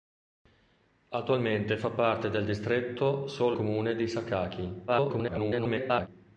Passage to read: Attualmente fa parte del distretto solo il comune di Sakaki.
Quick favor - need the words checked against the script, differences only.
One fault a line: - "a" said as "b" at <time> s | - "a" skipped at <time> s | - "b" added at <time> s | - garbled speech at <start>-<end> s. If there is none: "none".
- "il" skipped at 3.6 s
- garbled speech at 4.9-6.1 s